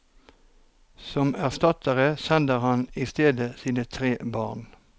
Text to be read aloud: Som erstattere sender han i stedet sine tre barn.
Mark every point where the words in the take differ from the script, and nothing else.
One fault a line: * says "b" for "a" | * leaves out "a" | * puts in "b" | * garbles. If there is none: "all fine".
all fine